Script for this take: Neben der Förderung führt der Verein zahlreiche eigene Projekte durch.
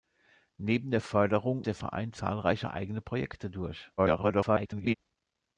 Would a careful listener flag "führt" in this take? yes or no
yes